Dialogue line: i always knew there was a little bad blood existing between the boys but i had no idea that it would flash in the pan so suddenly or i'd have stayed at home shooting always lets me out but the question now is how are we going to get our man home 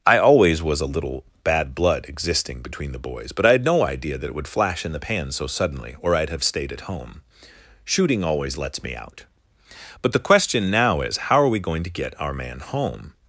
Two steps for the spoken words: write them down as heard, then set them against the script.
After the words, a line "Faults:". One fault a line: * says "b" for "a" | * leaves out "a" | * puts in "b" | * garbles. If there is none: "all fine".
i always was a little bad blood existing between the boys but i had no idea that it would flash in the pan so suddenly or i'd have stayed at home shooting always lets me out but the question now is how are we going to get our man home
Faults:
* leaves out "knew there"